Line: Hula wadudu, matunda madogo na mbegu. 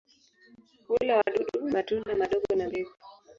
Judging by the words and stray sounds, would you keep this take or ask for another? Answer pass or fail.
fail